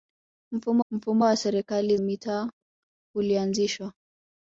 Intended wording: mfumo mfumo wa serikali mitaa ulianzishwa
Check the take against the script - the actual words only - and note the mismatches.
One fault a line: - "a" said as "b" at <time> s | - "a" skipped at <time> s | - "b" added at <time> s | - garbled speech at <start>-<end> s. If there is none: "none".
none